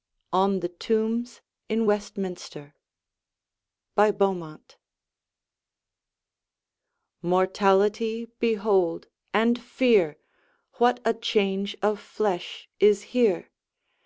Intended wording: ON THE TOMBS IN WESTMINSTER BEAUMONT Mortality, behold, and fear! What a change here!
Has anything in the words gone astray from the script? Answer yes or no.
yes